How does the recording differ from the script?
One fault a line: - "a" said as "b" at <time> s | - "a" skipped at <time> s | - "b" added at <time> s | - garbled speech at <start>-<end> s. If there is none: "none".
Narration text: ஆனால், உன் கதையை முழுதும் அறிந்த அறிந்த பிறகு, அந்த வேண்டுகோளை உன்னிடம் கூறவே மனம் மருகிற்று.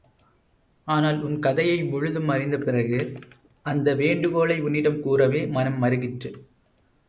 - "அறிந்த" skipped at 2.6 s